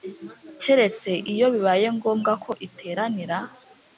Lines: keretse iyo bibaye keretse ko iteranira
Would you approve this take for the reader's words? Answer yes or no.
no